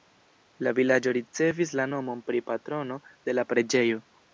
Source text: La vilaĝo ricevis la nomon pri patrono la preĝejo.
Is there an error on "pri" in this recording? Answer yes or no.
no